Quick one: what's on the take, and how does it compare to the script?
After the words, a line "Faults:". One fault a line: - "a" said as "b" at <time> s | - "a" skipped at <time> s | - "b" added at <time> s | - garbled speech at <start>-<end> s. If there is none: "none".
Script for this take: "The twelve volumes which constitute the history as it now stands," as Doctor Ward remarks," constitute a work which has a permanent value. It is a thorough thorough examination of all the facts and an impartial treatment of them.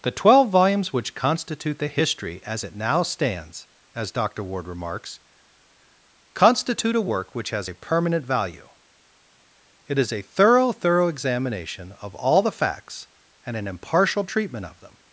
"The twelve volumes which constitute the history as it now stands," as Doctor Ward remarks," constitute a work which has a permanent value. It is a thorough thorough examination of all the facts and an impartial treatment of them.
Faults:
none